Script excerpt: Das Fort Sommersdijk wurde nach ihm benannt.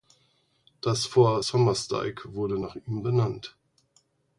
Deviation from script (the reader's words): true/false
false